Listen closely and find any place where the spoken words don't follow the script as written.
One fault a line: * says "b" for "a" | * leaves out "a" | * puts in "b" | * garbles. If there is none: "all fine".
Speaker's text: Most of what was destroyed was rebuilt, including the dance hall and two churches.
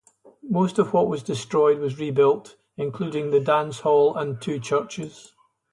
all fine